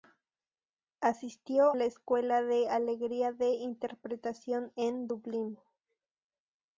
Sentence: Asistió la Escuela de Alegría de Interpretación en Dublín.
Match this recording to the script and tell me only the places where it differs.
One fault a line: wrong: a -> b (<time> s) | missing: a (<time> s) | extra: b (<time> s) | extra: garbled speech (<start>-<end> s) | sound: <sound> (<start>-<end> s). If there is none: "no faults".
no faults